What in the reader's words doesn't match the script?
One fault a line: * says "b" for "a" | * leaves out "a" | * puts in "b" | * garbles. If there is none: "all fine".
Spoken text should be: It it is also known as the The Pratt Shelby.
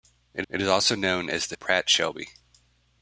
all fine